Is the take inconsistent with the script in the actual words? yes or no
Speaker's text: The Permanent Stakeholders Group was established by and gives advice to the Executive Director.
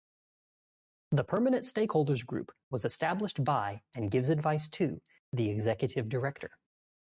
no